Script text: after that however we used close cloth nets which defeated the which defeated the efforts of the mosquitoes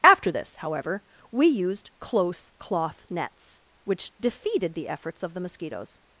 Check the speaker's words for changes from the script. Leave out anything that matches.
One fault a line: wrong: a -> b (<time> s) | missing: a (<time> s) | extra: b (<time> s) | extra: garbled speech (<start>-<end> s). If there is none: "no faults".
wrong: that -> this (0.3 s)
missing: which defeated the (4.9 s)